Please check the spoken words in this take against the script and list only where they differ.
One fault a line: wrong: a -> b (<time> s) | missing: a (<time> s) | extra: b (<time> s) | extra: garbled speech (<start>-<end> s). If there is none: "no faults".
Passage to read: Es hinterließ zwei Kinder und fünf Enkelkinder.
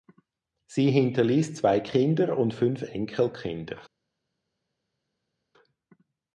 wrong: Es -> Sie (0.7 s)